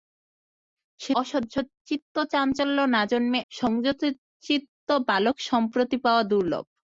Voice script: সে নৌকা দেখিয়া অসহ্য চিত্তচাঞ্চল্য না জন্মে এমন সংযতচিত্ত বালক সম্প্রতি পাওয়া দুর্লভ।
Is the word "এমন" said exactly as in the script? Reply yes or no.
no